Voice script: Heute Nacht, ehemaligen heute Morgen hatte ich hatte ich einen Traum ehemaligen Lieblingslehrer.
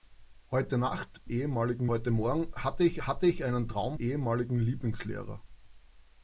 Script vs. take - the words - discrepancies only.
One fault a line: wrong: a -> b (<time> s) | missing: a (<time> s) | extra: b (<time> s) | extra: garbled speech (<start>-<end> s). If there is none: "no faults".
no faults